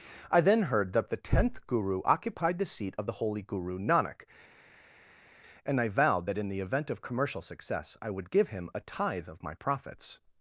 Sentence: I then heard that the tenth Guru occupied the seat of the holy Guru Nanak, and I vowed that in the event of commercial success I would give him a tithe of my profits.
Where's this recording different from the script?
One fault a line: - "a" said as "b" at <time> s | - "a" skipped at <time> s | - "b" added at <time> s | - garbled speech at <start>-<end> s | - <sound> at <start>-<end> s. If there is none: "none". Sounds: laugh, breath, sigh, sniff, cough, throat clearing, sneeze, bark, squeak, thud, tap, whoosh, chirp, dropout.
none